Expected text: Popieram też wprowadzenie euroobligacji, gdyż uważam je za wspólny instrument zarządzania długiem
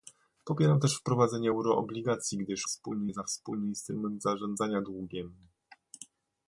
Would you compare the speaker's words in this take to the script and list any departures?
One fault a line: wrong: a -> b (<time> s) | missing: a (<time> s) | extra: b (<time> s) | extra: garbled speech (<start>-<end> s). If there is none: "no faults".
wrong: uważam -> wspólny (2.6 s)